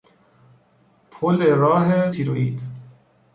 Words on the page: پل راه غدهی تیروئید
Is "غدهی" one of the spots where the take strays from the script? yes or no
yes